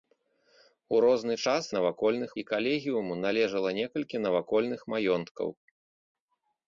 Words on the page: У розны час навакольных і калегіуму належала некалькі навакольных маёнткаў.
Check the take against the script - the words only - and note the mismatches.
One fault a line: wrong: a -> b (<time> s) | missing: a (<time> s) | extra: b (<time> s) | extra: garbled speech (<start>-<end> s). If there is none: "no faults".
no faults